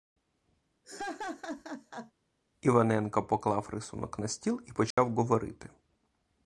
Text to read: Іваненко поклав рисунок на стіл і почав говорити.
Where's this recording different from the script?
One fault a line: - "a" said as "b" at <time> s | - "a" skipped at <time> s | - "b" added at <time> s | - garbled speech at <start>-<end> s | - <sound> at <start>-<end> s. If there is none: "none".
- laugh at 0.8-2.1 s
- dropout at 4.9-5.0 s